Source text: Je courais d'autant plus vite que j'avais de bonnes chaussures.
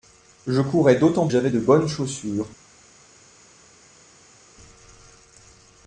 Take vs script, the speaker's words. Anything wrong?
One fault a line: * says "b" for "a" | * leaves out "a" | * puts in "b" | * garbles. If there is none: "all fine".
* leaves out "plus vite que"